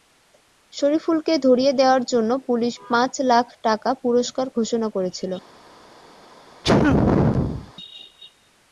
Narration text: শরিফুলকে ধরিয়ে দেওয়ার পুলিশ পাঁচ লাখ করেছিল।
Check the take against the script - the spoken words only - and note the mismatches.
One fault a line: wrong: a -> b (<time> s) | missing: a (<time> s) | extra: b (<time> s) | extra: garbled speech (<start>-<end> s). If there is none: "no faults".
extra: জন্য (2.0 s)
extra: টাকা পুরস্কার ঘোষণা (3.6 s)